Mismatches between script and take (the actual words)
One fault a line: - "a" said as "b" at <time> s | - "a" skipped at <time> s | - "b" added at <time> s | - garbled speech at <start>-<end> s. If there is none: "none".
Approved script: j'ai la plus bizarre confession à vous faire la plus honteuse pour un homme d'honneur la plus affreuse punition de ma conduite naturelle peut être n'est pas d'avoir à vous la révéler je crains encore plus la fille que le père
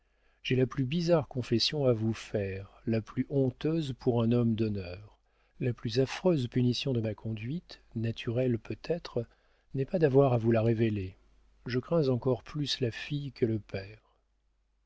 none